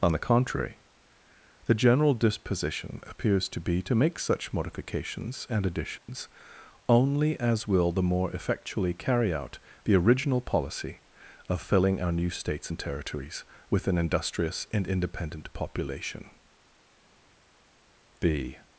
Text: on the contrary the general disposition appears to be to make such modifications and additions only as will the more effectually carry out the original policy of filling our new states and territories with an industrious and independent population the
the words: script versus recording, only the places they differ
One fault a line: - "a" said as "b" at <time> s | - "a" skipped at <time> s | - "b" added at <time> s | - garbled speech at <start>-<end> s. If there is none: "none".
none